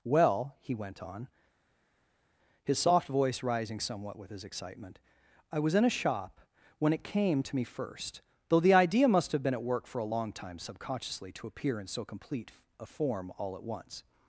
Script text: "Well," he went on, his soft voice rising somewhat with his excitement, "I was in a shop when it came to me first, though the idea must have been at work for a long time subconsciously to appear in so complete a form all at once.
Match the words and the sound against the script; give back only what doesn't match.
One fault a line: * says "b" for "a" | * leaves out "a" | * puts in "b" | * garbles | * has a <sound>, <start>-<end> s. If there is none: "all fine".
all fine